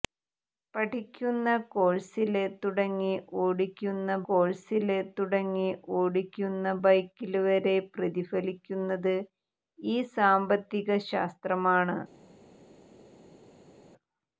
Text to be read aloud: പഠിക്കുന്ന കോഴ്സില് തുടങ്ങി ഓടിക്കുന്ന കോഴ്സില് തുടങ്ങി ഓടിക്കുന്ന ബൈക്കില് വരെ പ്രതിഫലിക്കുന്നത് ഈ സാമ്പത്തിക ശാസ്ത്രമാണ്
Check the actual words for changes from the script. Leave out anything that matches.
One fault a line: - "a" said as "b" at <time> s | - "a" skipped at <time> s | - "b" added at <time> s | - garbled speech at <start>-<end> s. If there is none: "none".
none